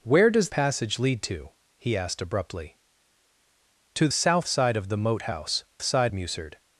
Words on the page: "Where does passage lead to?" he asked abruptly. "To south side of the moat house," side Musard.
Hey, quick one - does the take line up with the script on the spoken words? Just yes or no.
yes